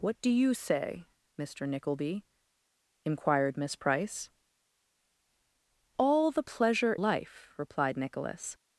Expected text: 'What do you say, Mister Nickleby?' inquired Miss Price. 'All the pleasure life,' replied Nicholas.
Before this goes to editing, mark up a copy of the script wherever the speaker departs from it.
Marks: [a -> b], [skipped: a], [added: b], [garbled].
'What do you say, Mister Nickleby?' inquired Miss Price. 'All the pleasure life,' replied Nicholas.